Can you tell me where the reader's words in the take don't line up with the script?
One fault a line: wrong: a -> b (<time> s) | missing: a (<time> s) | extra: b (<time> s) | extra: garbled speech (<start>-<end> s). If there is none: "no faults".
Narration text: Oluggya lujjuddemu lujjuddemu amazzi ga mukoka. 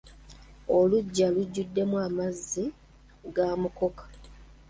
missing: lujjuddemu (1.9 s)